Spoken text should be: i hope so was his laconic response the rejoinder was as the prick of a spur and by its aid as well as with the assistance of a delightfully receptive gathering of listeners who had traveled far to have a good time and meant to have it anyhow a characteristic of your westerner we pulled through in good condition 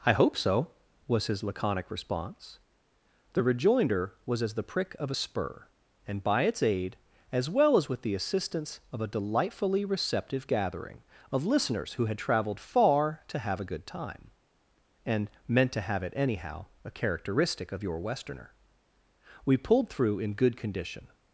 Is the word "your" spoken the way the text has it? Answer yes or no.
yes